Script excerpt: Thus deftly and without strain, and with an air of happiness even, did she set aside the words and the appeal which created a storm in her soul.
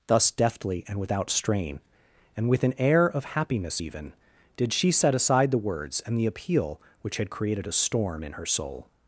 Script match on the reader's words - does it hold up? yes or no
no